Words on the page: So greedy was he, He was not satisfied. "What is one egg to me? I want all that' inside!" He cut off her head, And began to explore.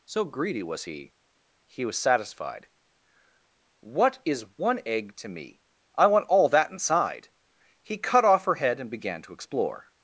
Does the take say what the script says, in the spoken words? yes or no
no